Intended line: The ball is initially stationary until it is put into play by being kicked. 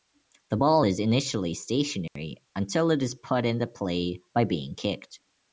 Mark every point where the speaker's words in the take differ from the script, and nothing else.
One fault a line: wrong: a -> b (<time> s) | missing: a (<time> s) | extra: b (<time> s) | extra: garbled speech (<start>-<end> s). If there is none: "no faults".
no faults